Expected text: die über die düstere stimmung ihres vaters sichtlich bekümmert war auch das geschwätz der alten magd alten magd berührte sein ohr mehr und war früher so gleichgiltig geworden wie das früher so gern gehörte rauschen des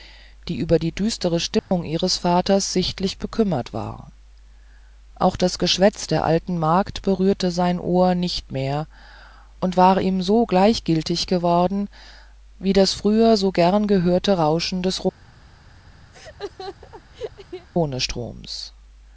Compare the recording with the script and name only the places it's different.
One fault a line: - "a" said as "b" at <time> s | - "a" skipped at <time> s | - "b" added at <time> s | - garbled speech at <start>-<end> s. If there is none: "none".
- "alten magd" skipped at 7.0 s
- "nicht" added at 8.2 s
- "früher" said as "ihm" at 10.0 s